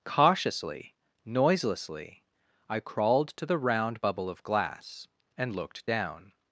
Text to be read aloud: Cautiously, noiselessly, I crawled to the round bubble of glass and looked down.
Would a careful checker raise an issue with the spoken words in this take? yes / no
no